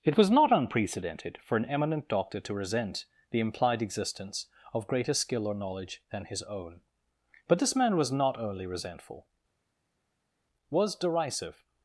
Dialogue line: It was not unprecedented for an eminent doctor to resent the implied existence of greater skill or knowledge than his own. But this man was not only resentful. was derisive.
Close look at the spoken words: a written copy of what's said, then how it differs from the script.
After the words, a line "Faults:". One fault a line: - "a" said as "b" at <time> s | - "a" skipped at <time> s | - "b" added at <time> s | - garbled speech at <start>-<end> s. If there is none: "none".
It was not unprecedented for an eminent doctor to resent the implied existence of greater skill or knowledge than his own. But this man was not only resentful. was derisive.
Faults:
none